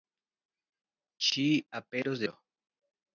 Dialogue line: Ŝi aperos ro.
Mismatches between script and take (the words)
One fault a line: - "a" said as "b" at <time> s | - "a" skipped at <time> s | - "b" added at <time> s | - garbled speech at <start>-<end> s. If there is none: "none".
none